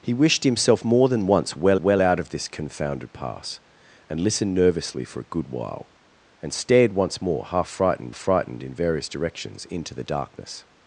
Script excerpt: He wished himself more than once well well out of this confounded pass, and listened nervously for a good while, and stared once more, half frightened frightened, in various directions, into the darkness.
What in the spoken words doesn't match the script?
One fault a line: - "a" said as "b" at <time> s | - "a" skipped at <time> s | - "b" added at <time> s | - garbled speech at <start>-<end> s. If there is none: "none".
none